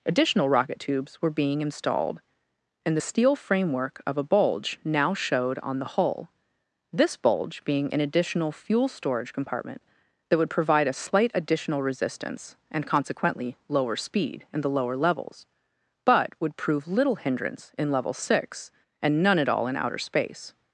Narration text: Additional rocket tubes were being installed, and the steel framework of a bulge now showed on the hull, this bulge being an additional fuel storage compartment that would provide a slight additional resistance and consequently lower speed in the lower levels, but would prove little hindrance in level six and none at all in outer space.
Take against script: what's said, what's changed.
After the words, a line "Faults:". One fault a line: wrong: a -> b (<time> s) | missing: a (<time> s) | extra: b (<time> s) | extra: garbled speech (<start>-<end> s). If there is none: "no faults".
Additional rocket tubes were being installed, and the steel framework of a bulge now showed on the hull, this bulge being an additional fuel storage compartment that would provide a slight additional resistance and consequently lower speed in the lower levels, but would prove little hindrance in level six and none at all in outer space.
Faults:
no faults